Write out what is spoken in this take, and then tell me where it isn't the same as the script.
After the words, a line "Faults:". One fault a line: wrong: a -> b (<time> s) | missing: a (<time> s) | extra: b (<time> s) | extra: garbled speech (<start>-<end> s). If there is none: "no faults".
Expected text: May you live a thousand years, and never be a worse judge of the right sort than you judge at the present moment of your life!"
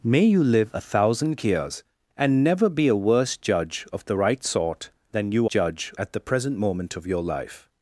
May you live a thousand years, and never be a worse judge of the right sort than you judge at the present moment of your life!"
Faults:
no faults